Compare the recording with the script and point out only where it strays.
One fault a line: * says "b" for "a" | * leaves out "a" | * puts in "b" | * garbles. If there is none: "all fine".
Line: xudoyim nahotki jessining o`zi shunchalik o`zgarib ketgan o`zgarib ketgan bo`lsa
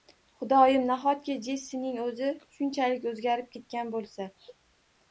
* leaves out "o`zgarib ketgan"